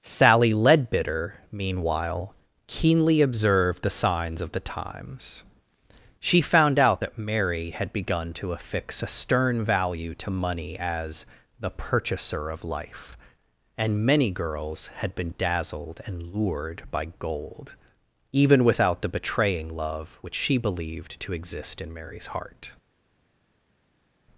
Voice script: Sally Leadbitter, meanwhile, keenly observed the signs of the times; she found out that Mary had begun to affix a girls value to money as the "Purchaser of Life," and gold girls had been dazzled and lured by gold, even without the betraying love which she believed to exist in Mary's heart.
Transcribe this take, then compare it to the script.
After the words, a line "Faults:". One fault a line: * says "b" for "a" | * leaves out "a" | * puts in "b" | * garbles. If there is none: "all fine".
Sally Leadbitter, meanwhile, keenly observed the signs of the times; she found out that Mary had begun to affix a stern value to money as the "Purchaser of Life," and many girls had been dazzled and lured by gold, even without the betraying love which she believed to exist in Mary's heart.
Faults:
* says "stern" for "girls"
* says "many" for "gold"